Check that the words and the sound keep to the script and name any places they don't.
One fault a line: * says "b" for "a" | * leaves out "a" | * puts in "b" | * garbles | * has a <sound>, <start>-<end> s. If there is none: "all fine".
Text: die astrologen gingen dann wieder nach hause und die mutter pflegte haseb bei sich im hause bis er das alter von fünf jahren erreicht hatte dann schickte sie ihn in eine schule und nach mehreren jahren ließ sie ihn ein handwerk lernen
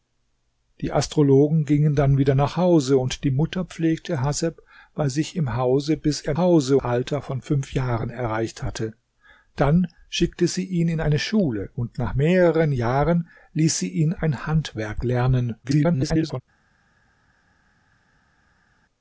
* says "hause" for "das"
* garbles